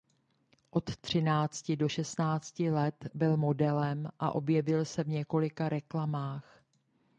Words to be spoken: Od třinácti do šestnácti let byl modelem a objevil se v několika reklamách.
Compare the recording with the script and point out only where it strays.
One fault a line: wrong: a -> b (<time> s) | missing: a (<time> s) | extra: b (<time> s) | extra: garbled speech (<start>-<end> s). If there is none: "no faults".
no faults